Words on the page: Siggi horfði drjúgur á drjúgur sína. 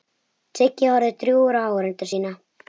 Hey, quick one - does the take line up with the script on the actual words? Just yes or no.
no